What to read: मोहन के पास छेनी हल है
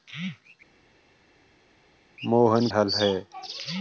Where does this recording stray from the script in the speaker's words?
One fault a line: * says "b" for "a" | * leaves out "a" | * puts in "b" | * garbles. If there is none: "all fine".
* leaves out "के पास छेनी"